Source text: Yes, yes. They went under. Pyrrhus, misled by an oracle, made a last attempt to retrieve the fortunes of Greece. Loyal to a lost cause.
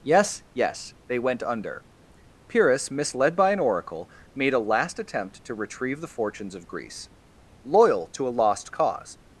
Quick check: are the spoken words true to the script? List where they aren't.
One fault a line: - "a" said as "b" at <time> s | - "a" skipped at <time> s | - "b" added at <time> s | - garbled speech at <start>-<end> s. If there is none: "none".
none